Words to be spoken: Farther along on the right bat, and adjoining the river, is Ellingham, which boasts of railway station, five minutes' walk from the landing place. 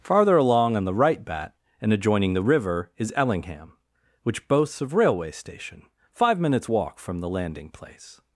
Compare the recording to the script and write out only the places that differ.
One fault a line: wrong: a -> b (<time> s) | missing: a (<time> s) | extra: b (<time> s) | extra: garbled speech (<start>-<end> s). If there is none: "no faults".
no faults